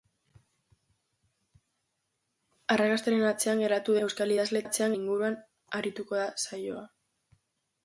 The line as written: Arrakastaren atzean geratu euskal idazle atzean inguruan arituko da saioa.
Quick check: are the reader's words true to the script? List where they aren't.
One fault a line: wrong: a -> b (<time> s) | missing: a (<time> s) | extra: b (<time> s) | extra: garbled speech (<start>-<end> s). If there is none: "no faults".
no faults